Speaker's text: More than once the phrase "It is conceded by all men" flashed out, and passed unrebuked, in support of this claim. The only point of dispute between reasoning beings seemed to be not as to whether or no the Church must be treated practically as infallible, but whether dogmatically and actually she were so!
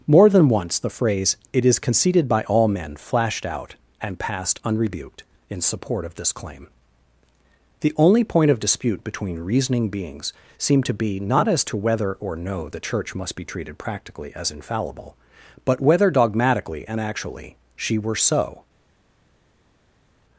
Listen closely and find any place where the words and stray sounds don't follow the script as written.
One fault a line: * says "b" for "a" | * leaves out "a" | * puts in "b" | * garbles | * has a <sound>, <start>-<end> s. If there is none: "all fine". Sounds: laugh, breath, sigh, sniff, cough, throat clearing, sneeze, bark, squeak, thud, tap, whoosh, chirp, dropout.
all fine